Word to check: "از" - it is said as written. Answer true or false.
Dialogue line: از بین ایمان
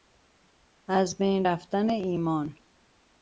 true